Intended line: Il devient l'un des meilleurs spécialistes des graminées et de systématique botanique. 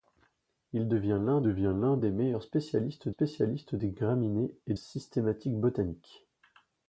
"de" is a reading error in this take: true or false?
true